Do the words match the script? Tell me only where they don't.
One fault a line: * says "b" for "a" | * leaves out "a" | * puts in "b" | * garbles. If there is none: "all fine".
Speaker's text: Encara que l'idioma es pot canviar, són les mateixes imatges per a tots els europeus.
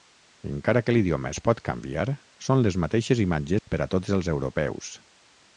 all fine